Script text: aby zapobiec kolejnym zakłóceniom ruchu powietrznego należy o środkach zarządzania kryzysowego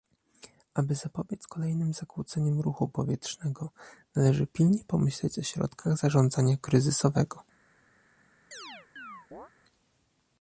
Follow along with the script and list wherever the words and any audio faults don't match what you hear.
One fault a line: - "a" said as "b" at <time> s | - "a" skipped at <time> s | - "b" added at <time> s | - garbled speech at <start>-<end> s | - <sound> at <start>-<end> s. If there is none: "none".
- "pilnie pomyśleć" added at 4.5 s
- chirp at 8.5-9.5 s